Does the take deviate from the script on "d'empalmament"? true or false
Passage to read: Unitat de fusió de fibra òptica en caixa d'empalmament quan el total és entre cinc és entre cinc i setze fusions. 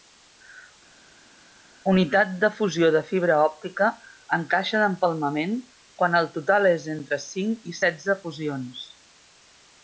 false